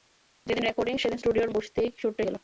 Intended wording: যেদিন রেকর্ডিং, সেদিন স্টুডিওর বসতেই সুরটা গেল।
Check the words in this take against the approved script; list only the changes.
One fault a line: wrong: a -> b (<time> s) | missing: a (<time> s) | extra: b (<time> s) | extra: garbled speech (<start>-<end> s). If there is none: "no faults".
no faults